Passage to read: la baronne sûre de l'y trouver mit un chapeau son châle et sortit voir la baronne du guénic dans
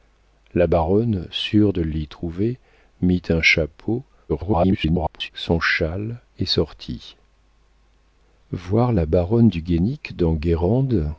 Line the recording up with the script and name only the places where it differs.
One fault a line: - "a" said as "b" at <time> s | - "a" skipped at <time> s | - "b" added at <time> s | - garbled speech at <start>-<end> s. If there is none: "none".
- garbled speech at 4.3-5.3 s